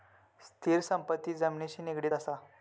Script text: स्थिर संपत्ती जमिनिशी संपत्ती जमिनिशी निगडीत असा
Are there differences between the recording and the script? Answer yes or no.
yes